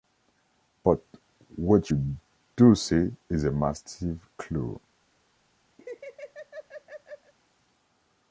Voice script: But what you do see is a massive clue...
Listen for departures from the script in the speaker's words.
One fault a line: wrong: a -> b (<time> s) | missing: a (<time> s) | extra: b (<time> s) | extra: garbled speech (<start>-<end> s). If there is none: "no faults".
no faults